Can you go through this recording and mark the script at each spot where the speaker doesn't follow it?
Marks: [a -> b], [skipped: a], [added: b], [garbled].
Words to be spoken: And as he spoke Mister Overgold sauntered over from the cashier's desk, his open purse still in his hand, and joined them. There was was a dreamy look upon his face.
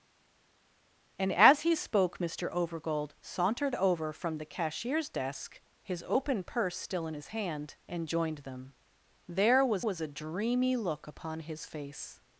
And as he spoke Mister Overgold sauntered over from the cashier's desk, his open purse still in his hand, and joined them. There was was a dreamy look upon his face.